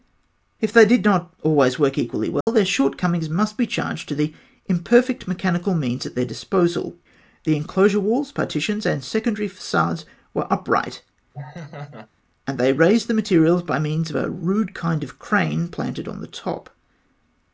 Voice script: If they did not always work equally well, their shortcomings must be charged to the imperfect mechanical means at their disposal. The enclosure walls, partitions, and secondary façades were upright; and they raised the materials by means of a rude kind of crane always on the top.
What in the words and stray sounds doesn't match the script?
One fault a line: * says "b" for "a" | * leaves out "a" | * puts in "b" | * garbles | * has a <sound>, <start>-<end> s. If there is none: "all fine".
* has a dropout, 2.4-2.5 s
* has a laugh, 11.3-12.1 s
* says "planted" for "always"